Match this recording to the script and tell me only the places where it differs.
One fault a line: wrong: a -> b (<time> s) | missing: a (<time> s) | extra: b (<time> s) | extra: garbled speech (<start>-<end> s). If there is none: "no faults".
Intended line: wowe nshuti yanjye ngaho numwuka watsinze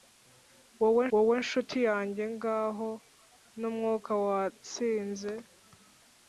extra: wowe (1.1 s)